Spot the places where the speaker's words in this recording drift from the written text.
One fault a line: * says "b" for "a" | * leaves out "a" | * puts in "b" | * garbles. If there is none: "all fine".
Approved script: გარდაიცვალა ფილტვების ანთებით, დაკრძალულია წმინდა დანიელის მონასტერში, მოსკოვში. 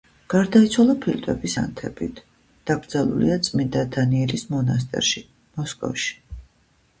all fine